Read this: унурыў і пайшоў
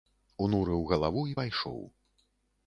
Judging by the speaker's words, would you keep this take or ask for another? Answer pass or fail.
fail